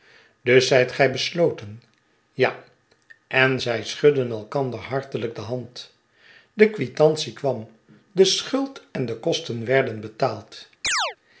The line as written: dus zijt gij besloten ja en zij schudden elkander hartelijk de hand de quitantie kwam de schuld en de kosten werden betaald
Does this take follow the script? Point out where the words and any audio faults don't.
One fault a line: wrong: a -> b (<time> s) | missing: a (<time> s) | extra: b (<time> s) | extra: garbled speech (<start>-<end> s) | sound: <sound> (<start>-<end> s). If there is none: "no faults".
sound: chirp (10.8-11.2 s)